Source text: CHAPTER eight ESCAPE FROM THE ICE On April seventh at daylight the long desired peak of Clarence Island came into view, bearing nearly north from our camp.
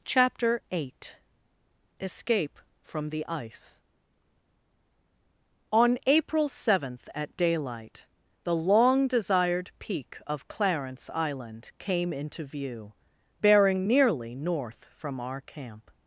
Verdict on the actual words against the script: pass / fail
pass